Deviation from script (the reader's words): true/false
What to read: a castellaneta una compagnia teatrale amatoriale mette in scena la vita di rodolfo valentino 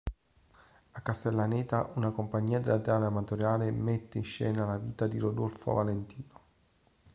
false